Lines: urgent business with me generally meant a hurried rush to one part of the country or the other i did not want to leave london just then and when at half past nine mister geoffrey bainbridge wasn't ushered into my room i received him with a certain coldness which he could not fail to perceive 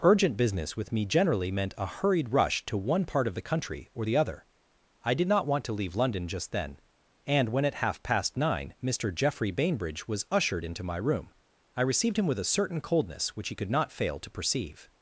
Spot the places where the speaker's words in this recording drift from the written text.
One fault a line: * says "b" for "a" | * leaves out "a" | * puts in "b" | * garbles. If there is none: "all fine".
* says "was" for "wasn't"